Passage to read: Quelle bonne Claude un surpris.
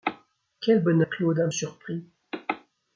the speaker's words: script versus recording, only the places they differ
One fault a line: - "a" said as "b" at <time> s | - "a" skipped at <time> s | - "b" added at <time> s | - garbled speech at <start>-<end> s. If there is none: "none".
none